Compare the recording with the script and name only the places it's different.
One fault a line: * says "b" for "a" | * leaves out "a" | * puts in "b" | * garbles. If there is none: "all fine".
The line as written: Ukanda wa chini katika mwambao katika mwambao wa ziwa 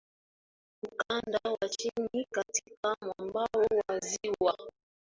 * leaves out "katika mwambao"